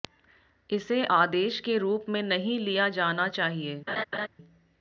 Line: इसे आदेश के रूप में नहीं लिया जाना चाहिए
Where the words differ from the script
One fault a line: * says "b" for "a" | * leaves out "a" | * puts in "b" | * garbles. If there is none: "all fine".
all fine